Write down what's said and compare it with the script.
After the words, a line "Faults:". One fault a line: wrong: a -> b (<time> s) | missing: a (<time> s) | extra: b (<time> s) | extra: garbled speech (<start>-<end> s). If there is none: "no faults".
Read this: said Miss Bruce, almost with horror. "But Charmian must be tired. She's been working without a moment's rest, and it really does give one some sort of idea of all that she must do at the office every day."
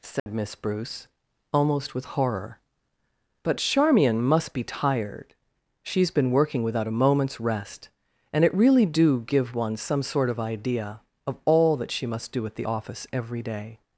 said Miss Bruce, almost with horror. "But Charmian must be tired. She's been working without a moment's rest, and it really do give one some sort of idea of all that she must do at the office every day."
Faults:
wrong: does -> do (8.8 s)